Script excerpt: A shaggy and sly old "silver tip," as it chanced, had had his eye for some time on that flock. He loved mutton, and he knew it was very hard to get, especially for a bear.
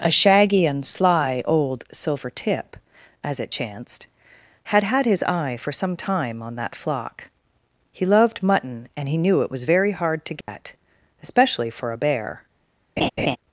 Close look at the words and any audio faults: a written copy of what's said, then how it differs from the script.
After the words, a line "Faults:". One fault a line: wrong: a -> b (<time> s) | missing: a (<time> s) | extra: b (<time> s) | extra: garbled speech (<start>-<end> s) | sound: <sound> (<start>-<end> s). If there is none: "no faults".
A shaggy and sly old "silver tip," as it chanced, had had his eye for some time on that flock. He loved mutton, and he knew it was very hard to get, especially for a bear.
Faults:
sound: dropout (10.4-10.5 s)
sound: laugh (13.0-13.4 s)